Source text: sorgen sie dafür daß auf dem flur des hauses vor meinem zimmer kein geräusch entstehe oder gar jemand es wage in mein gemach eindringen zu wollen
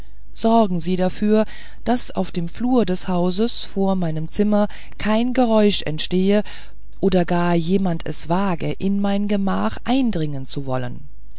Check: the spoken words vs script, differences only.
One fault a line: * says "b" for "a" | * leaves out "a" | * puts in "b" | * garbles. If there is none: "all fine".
all fine